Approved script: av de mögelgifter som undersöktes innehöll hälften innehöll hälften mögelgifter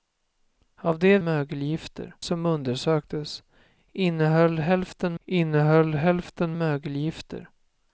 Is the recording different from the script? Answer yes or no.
no